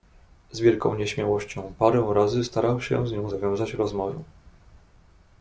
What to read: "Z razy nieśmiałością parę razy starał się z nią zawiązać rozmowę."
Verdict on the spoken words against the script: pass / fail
fail